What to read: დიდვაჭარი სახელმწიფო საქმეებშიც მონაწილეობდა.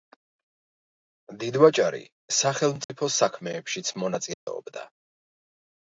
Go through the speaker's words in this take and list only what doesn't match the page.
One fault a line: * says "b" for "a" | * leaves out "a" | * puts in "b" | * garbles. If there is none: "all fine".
all fine